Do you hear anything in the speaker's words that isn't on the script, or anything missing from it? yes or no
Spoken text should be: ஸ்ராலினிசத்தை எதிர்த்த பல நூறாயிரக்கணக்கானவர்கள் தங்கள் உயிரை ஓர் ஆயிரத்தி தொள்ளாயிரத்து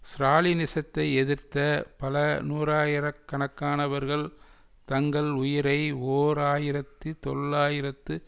no